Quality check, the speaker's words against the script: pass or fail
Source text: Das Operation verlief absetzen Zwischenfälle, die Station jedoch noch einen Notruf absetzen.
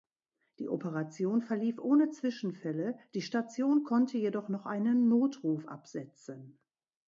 fail